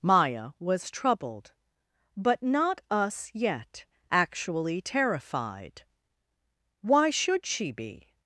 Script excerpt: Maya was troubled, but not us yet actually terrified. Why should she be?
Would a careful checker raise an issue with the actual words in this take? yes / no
no